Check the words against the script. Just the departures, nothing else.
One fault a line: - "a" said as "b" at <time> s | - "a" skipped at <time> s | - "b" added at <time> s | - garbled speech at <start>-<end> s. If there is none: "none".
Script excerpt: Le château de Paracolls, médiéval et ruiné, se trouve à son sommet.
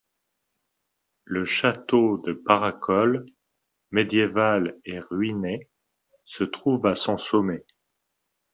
none